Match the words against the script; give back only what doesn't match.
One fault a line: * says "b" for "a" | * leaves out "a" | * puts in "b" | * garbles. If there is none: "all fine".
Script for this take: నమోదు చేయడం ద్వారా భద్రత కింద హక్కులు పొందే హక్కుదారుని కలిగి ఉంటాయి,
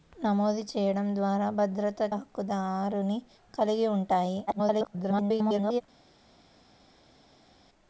* leaves out "కింద హక్కులు పొందే"
* garbles